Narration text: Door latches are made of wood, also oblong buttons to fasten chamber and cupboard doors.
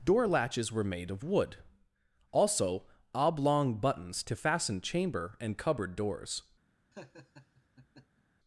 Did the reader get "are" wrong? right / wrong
wrong